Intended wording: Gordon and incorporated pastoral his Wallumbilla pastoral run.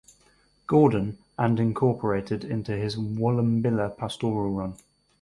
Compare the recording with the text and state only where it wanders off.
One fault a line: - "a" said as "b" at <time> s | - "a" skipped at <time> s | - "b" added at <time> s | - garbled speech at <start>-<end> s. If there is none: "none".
- "pastoral" said as "into" at 2.4 s